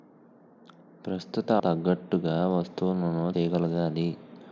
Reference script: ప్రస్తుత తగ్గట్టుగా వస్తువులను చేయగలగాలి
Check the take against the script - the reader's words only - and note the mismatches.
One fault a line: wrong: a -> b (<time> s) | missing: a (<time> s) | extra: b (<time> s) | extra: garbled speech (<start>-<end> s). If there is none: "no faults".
no faults